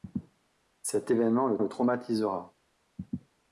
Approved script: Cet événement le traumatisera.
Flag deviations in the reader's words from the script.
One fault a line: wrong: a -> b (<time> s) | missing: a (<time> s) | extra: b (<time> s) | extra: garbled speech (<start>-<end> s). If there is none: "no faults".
extra: le (1.6 s)